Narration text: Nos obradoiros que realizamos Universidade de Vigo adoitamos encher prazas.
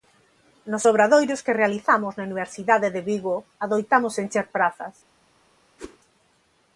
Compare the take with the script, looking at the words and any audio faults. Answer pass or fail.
fail